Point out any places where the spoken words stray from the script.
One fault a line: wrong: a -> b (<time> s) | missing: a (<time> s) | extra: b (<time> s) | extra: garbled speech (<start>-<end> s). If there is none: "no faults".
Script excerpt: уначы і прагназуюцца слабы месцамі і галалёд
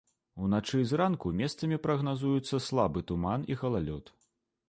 extra: зранку месцамі (0.9 s)
wrong: месцамі -> туман (3.1 s)